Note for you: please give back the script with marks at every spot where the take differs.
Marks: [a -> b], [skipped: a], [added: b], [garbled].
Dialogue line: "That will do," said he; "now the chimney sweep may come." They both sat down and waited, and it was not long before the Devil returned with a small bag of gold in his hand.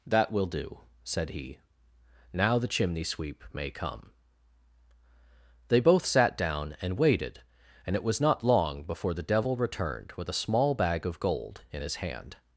"That will do," said he; "now the chimney sweep may come." They both sat down and waited, and it was not long before the Devil returned with a small bag of gold in his hand.